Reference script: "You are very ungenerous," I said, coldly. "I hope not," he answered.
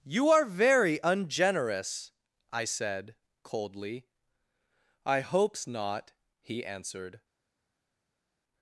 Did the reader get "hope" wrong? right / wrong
wrong